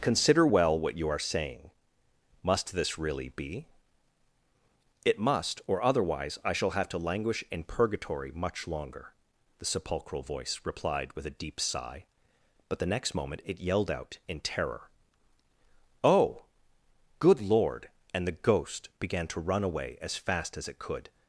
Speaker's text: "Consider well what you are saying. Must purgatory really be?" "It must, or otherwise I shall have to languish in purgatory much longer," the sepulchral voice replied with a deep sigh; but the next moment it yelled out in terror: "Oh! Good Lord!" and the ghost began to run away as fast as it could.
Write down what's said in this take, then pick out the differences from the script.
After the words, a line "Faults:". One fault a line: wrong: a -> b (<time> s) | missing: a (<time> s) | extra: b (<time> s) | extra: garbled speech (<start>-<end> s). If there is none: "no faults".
"Consider well what you are saying. Must this really be?" "It must, or otherwise I shall have to languish in purgatory much longer," the sepulchral voice replied with a deep sigh; but the next moment it yelled out in terror: "Oh! Good Lord!" and the ghost began to run away as fast as it could.
Faults:
wrong: purgatory -> this (2.7 s)